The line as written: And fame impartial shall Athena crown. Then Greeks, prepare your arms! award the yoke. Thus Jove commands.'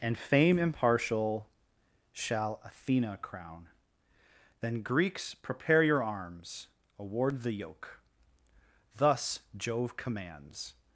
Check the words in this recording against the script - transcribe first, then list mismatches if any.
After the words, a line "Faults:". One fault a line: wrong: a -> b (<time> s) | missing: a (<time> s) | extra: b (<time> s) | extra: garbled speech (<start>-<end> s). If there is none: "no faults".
And fame impartial shall Athena crown. Then Greeks, prepare your arms! award the yoke. Thus Jove commands.'
Faults:
no faults